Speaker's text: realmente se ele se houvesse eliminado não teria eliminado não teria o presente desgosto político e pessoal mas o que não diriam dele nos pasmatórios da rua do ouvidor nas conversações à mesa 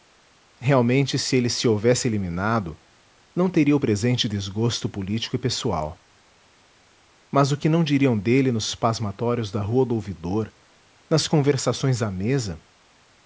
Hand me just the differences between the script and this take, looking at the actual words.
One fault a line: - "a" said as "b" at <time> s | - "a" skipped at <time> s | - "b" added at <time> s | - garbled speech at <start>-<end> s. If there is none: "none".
- "eliminado não teria" skipped at 3.8 s